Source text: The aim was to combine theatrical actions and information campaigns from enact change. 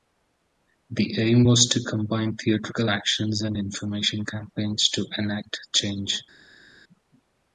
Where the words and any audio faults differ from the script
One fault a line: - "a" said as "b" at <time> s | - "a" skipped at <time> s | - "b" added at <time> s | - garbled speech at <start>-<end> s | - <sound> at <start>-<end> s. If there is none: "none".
- "from" said as "to" at 4.9 s